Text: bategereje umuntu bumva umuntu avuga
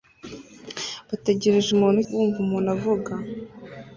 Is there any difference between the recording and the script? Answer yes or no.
no